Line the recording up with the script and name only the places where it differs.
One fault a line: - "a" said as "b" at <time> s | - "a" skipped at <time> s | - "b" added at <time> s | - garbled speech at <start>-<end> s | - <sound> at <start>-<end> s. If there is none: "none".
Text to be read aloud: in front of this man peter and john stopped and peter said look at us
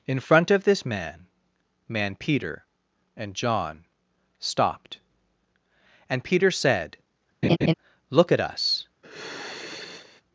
- "man" added at 1.9 s
- laugh at 7.4-7.7 s
- sigh at 9.0-10.2 s